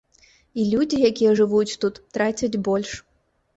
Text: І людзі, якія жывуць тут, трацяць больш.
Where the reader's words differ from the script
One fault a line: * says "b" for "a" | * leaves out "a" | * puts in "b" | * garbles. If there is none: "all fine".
all fine